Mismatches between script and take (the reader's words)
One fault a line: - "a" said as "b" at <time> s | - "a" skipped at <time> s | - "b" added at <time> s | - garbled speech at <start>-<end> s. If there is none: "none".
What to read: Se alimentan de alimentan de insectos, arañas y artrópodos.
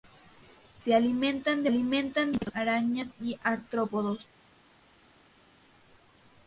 none